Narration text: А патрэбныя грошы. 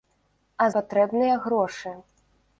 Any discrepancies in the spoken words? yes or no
no